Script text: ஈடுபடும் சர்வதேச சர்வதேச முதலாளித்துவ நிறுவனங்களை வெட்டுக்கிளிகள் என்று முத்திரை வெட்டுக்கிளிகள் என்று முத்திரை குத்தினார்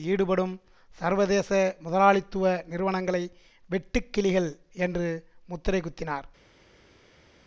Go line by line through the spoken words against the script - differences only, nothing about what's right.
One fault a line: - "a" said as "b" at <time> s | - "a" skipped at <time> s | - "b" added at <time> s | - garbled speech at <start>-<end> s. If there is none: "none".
- "சர்வதேச" skipped at 1.5 s
- "வெட்டுக்கிளிகள் என்று முத்திரை" skipped at 5.8 s